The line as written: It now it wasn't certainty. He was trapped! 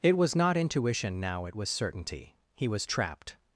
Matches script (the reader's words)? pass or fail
fail